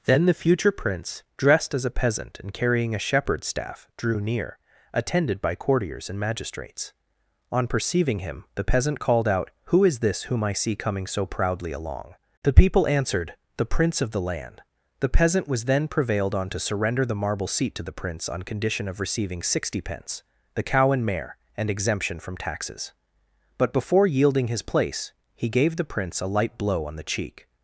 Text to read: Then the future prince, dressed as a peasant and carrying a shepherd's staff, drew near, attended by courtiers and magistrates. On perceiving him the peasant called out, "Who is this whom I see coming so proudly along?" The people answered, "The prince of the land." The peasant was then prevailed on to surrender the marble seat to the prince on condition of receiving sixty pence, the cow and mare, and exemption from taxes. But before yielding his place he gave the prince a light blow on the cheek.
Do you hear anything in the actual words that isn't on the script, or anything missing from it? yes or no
no